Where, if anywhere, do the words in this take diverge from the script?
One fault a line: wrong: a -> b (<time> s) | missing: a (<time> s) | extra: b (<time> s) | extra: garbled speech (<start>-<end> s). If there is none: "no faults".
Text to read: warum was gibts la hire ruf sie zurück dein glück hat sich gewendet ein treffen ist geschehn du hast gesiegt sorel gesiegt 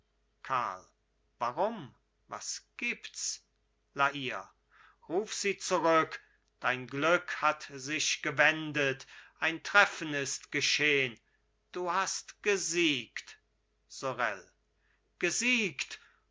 no faults